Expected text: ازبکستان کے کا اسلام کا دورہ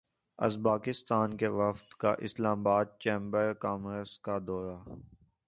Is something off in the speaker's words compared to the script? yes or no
yes